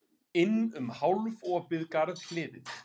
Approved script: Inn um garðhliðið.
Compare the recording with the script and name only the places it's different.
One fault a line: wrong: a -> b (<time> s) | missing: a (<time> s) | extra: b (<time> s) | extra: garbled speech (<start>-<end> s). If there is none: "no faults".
extra: hálfopið (1.0 s)